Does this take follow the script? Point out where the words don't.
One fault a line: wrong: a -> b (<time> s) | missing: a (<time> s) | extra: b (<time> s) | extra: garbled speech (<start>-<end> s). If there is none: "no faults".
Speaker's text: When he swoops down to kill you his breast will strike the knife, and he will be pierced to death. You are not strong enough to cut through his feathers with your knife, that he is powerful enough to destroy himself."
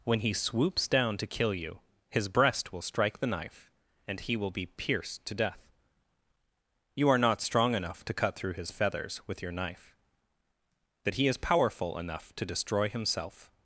no faults